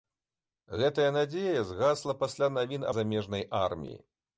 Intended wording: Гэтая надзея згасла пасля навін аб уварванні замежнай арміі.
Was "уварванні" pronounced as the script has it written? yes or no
no